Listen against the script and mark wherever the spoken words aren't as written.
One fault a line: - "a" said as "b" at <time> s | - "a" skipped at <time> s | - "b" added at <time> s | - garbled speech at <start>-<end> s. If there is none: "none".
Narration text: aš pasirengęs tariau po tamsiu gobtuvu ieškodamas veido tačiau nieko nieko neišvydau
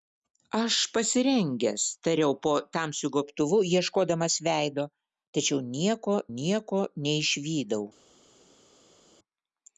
none